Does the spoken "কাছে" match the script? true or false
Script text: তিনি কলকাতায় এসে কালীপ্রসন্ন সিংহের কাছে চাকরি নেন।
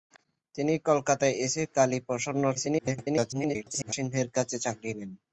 true